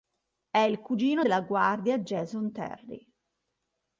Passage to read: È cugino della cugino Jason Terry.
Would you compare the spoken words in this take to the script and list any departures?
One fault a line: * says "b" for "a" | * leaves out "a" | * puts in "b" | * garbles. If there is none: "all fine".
* puts in "il"
* says "guardia" for "cugino"